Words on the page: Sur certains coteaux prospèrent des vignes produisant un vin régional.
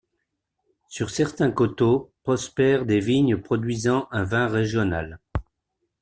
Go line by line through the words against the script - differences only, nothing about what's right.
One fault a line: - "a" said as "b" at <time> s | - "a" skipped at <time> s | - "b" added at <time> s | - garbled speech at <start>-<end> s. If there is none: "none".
none